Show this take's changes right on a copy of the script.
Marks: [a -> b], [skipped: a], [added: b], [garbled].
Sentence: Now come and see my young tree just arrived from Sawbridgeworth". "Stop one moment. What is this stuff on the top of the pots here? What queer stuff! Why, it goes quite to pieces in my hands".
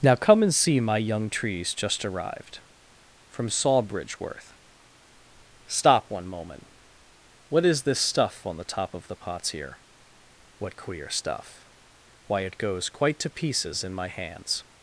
Now come and see my young [tree -> trees] just arrived from Sawbridgeworth". "Stop one moment. What is this stuff on the top of the pots here? What queer stuff! Why, it goes quite to pieces in my hands".